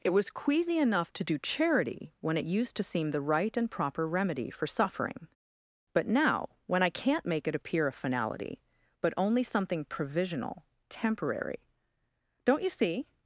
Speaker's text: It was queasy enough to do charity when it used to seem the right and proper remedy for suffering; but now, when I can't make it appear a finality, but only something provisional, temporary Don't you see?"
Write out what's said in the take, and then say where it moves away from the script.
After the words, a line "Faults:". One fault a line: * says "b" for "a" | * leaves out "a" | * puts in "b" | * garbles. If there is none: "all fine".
It was queasy enough to do charity when it used to seem the right and proper remedy for suffering; but now, when I can't make it appear a finality, but only something provisional, temporary Don't you see?"
Faults:
all fine